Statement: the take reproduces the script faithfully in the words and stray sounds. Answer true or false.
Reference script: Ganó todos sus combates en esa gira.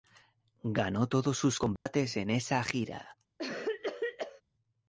false